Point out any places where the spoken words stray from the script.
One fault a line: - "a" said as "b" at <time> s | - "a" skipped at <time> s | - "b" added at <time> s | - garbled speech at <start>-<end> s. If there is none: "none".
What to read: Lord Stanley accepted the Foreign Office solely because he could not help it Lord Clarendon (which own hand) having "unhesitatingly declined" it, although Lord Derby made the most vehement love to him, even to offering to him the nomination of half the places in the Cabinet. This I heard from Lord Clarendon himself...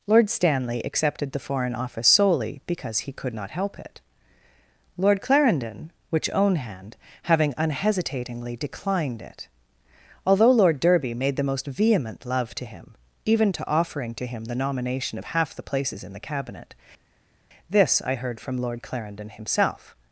none